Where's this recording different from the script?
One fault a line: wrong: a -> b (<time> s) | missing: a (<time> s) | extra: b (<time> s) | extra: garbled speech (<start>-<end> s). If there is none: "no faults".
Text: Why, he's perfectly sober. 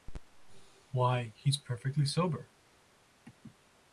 no faults